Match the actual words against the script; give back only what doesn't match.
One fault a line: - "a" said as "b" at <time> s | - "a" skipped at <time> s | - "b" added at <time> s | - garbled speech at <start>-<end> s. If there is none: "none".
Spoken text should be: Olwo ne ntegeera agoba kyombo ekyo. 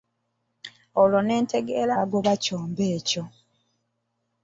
none